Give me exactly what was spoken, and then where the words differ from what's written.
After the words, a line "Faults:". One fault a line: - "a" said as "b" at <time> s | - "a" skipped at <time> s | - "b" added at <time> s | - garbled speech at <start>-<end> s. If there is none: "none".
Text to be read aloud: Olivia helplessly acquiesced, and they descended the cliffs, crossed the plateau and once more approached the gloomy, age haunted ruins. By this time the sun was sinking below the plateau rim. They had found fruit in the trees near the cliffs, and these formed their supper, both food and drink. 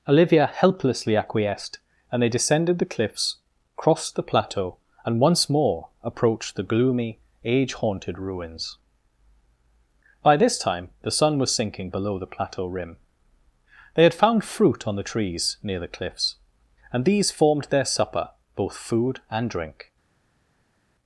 Olivia helplessly acquiesced, and they descended the cliffs, crossed the plateau and once more approached the gloomy, age haunted ruins. By this time the sun was sinking below the plateau rim. They had found fruit on the trees near the cliffs, and these formed their supper, both food and drink.
Faults:
- "in" said as "on" at 14.9 s